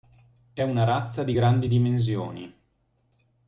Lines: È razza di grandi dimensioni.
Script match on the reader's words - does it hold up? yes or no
no